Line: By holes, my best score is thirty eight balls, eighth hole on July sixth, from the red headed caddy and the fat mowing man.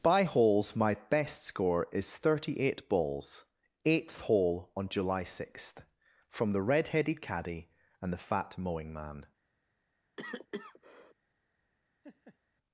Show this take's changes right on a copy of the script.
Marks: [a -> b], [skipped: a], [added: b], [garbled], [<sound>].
By holes, my best score is thirty eight balls, eighth hole on July sixth, from the red headed caddy and the fat mowing man. [cough] [laugh]